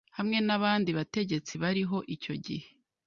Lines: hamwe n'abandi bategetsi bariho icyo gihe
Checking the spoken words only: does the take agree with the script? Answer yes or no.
yes